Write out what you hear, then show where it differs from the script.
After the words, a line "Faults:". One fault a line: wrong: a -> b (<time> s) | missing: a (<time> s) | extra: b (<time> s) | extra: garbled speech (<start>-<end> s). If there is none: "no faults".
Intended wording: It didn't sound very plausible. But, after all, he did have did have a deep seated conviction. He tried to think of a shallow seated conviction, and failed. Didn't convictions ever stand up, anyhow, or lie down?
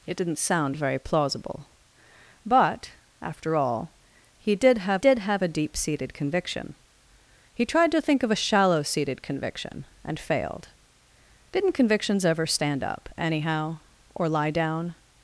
It didn't sound very plausible. But, after all, he did have did have a deep seated conviction. He tried to think of a shallow seated conviction, and failed. Didn't convictions ever stand up, anyhow, or lie down?
Faults:
no faults